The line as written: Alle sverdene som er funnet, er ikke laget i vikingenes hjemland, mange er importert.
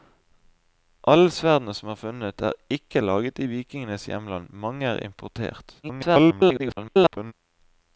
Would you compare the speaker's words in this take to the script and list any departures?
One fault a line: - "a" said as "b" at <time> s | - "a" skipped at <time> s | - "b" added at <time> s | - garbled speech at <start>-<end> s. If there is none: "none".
- garbled speech at 5.8-7.3 s